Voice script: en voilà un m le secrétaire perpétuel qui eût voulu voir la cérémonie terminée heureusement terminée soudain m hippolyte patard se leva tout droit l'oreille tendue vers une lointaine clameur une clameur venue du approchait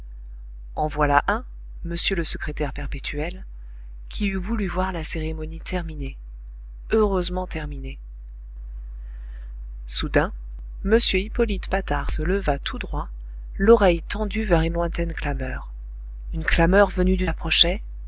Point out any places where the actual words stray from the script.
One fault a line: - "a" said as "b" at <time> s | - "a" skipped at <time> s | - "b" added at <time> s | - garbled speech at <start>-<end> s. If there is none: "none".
none